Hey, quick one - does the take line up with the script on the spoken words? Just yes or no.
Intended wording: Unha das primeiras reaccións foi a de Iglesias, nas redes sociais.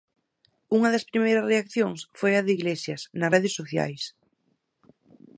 yes